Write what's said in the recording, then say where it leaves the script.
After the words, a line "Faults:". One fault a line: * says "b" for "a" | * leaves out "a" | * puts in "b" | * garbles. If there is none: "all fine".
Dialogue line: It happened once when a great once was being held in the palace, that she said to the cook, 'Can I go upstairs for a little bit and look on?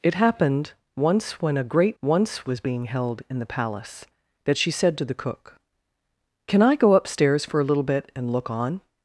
It happened once when a great once was being held in the palace, that she said to the cook, 'Can I go upstairs for a little bit and look on?
Faults:
all fine